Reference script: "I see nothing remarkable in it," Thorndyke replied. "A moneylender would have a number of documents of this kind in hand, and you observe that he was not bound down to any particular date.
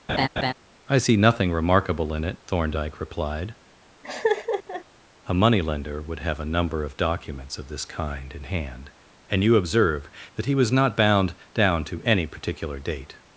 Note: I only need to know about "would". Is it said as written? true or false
true